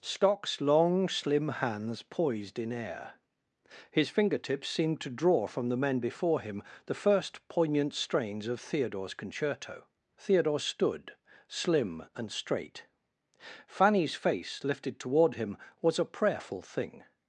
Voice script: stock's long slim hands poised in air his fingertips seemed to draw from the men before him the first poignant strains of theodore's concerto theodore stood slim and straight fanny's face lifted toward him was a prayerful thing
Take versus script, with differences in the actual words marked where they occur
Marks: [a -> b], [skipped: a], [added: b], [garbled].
stock's long slim hands poised in air his fingertips seemed to draw from the men before him the first poignant strains of theodore's concerto theodore stood slim and straight fanny's face lifted toward him was a prayerful thing